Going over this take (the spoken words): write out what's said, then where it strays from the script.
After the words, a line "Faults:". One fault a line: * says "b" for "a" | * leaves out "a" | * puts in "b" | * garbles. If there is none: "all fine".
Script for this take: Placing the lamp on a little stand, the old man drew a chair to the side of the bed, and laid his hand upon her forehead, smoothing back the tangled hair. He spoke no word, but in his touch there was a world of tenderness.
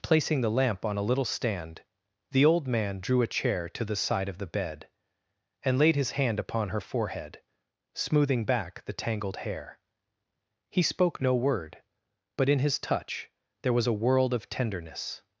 Placing the lamp on a little stand, the old man drew a chair to the side of the bed, and laid his hand upon her forehead, smoothing back the tangled hair. He spoke no word, but in his touch there was a world of tenderness.
Faults:
all fine